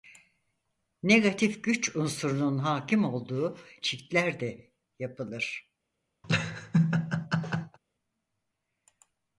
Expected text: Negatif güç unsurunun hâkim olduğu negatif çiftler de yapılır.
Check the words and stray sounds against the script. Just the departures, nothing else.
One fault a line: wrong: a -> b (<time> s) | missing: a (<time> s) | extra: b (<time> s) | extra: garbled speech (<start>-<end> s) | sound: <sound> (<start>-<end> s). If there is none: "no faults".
missing: negatif (3.6 s)
sound: laugh (6.2-7.8 s)